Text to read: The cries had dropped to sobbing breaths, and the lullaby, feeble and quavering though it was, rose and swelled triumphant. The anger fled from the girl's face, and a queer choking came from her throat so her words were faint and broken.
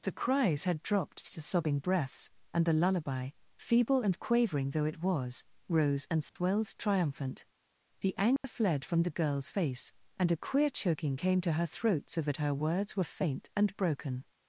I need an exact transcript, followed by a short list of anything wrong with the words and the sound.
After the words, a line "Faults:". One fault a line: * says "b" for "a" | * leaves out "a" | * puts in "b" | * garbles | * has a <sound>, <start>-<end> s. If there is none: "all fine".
The cries had dropped to sobbing breaths, and the lullaby, feeble and quavering though it was, rose and swelled triumphant. The anger fled from the girl's face, and a queer choking came to her throat so that her words were faint and broken.
Faults:
* has a dropout, 6.3-6.4 s
* has a dropout, 8.4-8.4 s
* says "to" for "from"
* puts in "that"